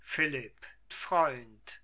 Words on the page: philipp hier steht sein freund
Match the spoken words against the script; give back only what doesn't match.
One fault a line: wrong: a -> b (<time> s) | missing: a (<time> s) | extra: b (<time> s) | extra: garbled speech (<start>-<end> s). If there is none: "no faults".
missing: hier steht sein (0.7 s)